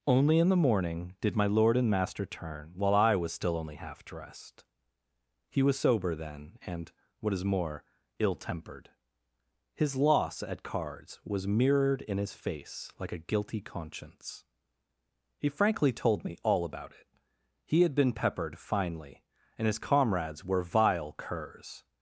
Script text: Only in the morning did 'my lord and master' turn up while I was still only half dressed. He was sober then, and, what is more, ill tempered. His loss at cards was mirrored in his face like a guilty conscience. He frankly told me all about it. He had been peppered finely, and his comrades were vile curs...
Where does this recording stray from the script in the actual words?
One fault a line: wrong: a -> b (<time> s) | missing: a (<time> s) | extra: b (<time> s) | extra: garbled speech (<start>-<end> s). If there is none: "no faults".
missing: up (2.7 s)